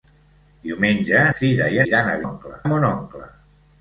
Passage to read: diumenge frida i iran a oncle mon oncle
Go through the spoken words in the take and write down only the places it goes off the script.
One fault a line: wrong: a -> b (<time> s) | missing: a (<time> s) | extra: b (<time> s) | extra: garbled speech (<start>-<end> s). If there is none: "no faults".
no faults